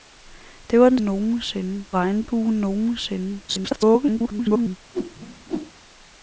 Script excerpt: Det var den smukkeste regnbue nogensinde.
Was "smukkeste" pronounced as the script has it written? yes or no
no